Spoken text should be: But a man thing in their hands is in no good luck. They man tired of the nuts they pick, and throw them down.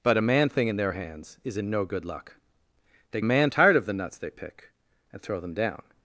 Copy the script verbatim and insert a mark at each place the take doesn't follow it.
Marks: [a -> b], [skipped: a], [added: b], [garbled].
But a man thing in their hands is in no good luck. They man tired of the nuts they pick, and throw them down.